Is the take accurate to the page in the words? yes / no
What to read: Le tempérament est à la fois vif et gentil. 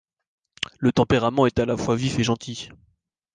yes